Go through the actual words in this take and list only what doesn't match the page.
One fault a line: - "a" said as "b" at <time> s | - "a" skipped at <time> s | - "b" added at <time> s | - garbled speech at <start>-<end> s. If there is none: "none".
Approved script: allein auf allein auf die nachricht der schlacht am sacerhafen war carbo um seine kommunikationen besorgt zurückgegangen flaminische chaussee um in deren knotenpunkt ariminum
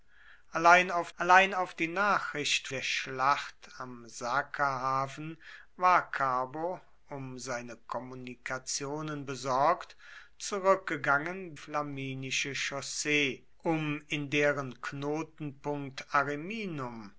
none